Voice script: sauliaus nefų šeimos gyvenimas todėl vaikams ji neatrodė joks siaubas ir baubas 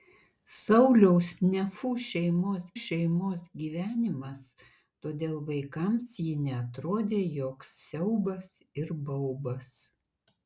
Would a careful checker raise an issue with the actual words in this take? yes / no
yes